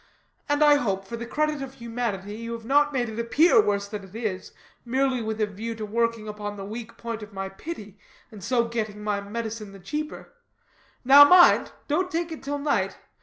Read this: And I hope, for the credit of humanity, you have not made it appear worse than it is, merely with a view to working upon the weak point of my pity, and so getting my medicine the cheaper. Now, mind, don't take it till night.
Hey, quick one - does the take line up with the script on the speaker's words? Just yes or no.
yes